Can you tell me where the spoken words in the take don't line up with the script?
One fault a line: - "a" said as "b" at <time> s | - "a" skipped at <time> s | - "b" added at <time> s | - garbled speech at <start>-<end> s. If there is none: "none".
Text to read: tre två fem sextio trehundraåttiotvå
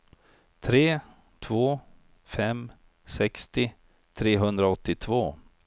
none